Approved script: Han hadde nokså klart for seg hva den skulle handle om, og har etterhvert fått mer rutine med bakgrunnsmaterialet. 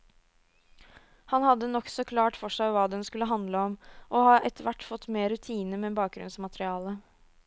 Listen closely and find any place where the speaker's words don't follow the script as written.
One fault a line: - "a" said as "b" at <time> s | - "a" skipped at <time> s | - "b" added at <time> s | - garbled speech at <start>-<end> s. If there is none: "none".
none